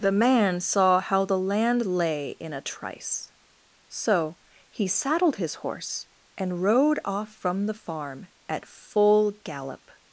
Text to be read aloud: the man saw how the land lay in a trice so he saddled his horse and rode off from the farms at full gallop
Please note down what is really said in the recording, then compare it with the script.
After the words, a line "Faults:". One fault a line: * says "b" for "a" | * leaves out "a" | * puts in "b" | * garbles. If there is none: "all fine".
the man saw how the land lay in a trice so he saddled his horse and rode off from the farm at full gallop
Faults:
* says "farm" for "farms"